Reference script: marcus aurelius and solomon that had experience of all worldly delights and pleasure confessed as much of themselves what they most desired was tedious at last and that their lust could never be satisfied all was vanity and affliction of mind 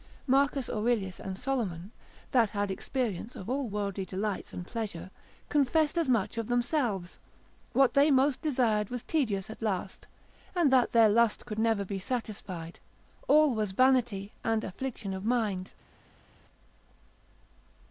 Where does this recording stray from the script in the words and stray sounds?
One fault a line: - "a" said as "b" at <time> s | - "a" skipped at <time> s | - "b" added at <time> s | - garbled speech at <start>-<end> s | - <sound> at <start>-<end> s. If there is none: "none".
none